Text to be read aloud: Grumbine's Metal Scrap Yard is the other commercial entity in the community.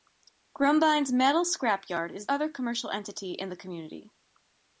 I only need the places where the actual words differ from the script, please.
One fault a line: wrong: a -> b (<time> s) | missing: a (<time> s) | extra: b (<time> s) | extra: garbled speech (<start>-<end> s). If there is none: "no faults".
missing: the (2.3 s)